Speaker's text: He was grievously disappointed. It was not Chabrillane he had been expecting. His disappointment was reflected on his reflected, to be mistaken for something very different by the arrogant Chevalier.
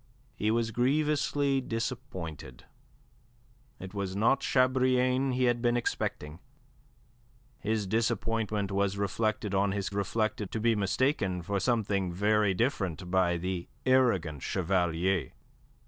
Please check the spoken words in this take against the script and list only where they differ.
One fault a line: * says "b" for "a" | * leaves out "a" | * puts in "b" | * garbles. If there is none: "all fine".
all fine